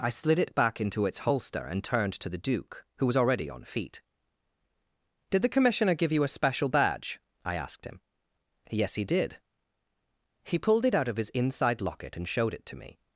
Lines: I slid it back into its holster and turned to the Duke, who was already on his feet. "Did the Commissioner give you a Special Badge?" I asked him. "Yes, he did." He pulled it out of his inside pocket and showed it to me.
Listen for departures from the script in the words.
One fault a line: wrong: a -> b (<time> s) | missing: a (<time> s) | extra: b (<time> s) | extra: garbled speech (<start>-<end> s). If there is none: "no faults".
missing: his (3.6 s)
wrong: pocket -> locket (11.8 s)